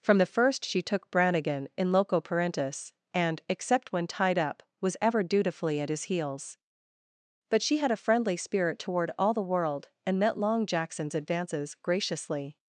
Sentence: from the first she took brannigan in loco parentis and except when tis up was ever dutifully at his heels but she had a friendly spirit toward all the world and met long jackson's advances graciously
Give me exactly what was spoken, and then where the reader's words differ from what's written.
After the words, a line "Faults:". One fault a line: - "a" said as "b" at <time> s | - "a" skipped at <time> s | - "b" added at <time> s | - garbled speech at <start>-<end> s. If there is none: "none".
from the first she took brannigan in loco parentis and except when tied up was ever dutifully at his heels but she had a friendly spirit toward all the world and met long jackson's advances graciously
Faults:
- "tis" said as "tied" at 4.1 s